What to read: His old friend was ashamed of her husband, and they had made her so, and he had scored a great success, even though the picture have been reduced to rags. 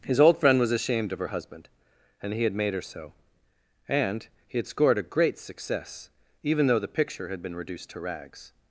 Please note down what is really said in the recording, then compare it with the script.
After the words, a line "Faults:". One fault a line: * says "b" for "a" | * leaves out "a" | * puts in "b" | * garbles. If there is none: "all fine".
His old friend was ashamed of her husband, and he had made her so, and he had scored a great success, even though the picture had been reduced to rags.
Faults:
* says "he" for "they"
* says "had" for "have"